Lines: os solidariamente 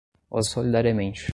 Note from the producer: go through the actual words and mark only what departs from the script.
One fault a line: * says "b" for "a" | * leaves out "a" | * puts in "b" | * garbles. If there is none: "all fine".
all fine